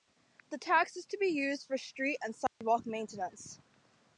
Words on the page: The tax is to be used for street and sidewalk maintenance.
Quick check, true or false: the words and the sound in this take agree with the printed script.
false